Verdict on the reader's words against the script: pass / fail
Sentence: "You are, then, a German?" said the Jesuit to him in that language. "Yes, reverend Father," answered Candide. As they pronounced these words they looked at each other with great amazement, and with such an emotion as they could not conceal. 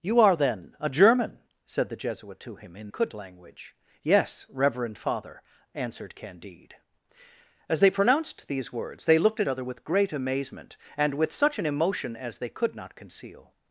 fail